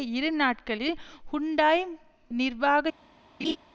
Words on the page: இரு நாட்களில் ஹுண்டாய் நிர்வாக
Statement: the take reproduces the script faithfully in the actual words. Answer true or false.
true